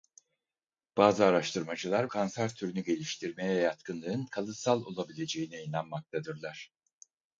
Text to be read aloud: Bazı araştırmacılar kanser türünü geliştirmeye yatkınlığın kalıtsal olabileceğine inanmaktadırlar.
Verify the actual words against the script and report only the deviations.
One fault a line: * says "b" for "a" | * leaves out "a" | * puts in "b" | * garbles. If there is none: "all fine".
all fine